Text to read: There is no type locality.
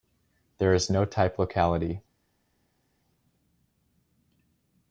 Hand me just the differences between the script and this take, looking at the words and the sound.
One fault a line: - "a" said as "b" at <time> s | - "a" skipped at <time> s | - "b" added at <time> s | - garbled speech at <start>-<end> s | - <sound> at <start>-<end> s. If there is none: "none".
none